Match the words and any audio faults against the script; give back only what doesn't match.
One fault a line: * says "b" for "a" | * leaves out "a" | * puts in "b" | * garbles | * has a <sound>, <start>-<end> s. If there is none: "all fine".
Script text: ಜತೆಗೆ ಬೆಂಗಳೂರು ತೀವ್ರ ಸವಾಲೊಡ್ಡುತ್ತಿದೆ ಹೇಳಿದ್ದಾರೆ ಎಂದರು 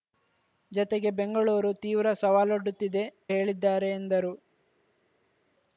all fine